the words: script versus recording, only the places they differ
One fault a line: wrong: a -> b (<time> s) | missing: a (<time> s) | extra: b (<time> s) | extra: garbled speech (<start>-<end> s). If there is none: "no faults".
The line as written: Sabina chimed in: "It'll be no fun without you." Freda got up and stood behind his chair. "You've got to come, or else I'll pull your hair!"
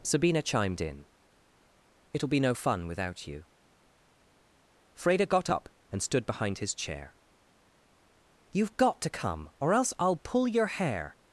no faults